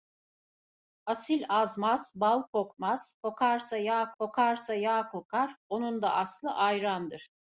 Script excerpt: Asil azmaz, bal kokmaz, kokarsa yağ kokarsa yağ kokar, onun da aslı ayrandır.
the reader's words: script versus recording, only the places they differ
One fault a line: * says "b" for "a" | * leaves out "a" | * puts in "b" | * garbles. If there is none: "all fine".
all fine